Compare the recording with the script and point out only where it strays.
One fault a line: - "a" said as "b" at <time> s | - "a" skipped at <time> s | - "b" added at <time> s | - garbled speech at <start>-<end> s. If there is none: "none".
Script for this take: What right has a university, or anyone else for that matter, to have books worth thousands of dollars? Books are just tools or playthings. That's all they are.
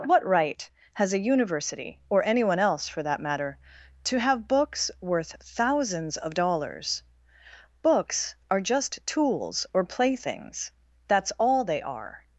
none